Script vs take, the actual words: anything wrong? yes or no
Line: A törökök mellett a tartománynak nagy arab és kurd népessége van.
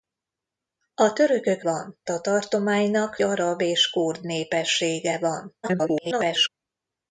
yes